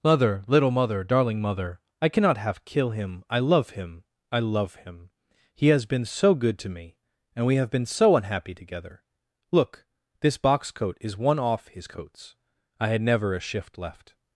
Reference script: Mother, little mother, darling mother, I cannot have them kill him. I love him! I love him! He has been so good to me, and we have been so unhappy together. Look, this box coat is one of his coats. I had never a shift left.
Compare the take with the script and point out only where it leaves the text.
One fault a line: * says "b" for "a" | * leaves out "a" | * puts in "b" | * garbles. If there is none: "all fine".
* leaves out "them"
* says "off" for "of"